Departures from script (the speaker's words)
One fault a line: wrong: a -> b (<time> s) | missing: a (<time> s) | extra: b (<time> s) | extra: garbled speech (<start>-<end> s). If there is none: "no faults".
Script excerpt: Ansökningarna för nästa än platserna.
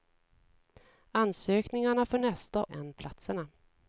no faults